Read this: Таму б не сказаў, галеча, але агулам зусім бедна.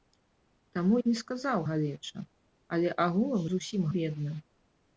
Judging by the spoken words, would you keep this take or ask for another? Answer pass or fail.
pass